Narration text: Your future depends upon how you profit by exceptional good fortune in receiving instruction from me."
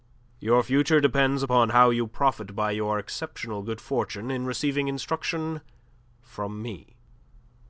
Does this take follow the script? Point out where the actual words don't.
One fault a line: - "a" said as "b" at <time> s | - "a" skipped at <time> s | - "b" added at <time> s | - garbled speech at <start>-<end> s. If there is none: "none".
- "your" added at 2.7 s